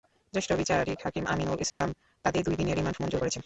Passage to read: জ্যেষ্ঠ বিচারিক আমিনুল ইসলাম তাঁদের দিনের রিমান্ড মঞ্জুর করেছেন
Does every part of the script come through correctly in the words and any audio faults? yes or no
no